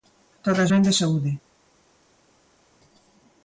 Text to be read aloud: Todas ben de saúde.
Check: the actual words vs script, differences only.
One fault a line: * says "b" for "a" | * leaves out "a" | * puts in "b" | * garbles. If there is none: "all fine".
all fine